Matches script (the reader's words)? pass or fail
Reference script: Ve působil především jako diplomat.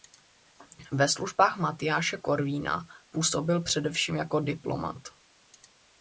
fail